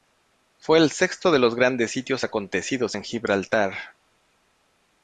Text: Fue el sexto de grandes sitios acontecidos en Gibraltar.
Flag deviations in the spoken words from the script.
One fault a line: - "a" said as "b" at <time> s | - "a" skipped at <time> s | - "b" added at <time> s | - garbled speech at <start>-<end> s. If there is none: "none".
- "los" added at 1.4 s